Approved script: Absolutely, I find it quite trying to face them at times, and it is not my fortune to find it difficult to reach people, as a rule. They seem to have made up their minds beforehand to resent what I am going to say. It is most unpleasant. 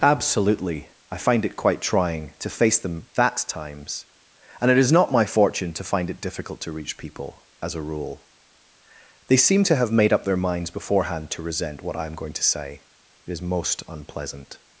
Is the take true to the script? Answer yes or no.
no